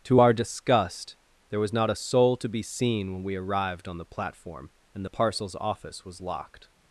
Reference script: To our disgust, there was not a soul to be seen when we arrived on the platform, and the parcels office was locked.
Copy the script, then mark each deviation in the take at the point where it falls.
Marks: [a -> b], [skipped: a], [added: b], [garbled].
To our disgust, there was not a soul to be seen when we arrived on the platform, and the parcels office was locked.